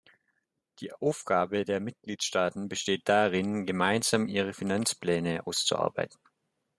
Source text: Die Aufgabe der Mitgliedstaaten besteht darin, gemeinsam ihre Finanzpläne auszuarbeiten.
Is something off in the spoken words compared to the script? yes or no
no